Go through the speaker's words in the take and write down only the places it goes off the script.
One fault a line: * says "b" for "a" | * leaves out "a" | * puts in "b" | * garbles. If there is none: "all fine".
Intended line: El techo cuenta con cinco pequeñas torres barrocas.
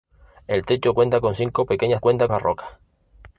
* says "cuenta" for "torres"